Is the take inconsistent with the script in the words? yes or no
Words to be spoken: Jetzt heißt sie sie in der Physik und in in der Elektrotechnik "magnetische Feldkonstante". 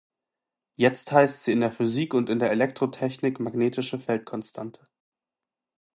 yes